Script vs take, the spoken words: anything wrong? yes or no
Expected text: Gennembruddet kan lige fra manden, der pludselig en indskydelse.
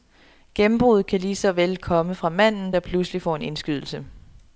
yes